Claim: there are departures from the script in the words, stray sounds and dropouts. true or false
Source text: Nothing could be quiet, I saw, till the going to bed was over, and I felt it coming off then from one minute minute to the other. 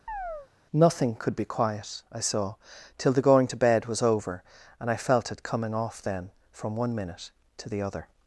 true